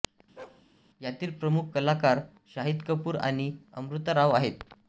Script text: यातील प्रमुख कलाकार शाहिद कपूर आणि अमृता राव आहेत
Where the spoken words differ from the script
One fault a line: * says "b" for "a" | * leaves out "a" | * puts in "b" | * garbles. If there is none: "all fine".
all fine